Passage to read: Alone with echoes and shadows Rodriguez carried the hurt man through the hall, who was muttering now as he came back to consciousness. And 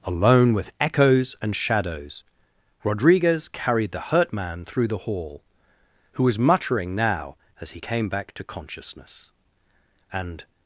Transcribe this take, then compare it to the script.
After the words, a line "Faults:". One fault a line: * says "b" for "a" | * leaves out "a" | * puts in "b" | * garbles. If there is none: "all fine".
Alone with echoes and shadows Rodriguez carried the hurt man through the hall, who was muttering now as he came back to consciousness. And
Faults:
all fine